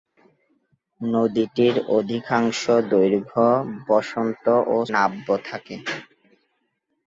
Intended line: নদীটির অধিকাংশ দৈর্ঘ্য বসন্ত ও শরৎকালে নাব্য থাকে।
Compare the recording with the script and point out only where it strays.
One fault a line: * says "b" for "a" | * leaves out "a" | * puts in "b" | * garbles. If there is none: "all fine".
* leaves out "শরৎকালে"